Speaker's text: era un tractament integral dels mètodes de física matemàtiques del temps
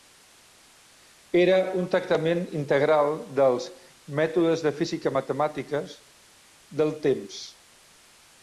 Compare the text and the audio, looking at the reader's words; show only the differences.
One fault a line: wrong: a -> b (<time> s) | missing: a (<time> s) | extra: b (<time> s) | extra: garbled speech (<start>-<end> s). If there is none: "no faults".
no faults